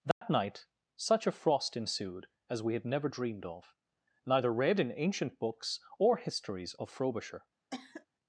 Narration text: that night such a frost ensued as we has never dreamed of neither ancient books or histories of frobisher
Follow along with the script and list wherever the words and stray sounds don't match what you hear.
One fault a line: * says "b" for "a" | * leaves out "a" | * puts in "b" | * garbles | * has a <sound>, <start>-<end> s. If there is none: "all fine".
* has a dropout, 0.1-0.2 s
* says "had" for "has"
* puts in "read in"
* has a cough, 7.7-8.1 s